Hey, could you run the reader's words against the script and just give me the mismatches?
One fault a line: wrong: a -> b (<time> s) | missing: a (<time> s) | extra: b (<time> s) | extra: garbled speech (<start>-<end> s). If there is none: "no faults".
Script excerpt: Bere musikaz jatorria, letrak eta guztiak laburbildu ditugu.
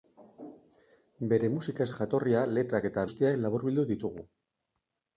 no faults